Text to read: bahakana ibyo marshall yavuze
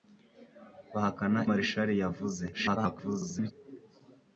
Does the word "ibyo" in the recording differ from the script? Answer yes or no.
yes